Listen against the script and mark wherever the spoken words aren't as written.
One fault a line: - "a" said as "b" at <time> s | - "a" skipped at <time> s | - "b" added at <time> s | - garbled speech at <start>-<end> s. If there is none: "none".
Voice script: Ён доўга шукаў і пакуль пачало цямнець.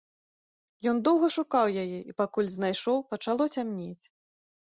- "яе" added at 1.8 s
- "знайшоў" added at 2.5 s